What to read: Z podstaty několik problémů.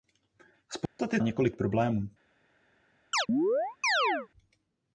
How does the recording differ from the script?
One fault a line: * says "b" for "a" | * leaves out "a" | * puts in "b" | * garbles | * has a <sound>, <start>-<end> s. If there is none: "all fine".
* has a dropout, 0.9-1.0 s
* has a chirp, 3.1-4.3 s